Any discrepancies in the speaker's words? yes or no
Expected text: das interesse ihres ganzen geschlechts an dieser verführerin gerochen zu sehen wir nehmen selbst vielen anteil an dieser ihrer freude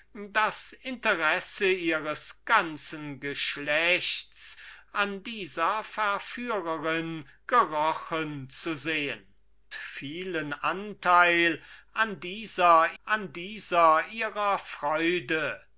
yes